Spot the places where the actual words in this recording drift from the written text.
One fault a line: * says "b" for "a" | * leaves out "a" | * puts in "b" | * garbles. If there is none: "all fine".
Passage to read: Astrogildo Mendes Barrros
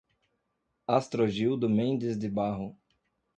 * puts in "de"